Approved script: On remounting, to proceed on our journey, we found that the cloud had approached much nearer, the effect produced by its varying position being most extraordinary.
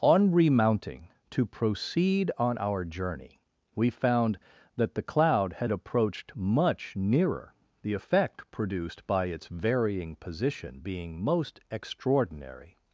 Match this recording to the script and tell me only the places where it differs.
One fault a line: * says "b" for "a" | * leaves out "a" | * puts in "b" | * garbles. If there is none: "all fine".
all fine